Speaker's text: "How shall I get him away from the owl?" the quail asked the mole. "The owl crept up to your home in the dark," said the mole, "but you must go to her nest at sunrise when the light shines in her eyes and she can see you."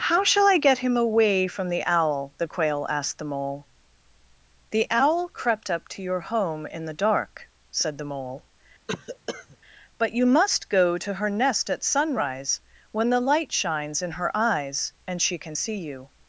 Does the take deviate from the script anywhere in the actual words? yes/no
no